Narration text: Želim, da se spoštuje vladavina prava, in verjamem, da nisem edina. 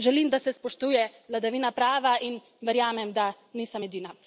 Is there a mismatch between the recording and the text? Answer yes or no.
no